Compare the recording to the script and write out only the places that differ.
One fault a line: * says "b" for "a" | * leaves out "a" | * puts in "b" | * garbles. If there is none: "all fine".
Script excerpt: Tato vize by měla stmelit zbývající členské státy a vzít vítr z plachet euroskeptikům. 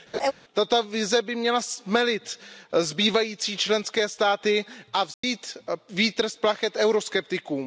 all fine